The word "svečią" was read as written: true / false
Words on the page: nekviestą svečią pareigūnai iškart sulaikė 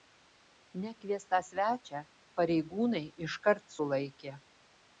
true